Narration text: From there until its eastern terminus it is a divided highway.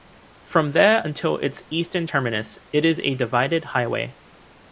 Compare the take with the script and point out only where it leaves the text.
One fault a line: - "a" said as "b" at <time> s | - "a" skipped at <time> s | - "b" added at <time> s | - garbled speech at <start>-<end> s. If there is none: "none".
none